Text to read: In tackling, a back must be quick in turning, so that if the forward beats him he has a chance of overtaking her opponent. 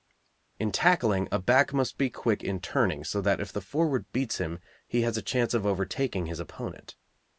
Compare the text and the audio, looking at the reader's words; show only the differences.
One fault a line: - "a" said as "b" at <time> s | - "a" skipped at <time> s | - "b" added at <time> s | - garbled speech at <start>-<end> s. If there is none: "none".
- "her" said as "his" at 6.3 s